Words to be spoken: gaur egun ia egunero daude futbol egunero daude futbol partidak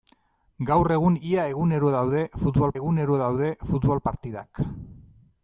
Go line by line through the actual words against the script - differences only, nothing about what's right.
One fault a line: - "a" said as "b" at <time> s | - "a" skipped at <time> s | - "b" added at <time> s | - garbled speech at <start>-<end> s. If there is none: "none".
none